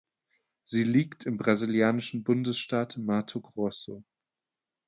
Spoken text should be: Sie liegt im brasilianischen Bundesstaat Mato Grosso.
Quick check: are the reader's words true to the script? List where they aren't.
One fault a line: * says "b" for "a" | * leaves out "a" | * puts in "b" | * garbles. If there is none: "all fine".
all fine